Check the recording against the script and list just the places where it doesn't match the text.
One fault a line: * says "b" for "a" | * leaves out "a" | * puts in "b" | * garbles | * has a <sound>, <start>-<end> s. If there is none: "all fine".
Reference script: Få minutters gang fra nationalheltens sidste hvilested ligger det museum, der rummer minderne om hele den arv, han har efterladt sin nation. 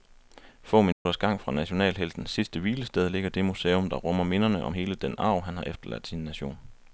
* has a dropout, 0.9-1.1 s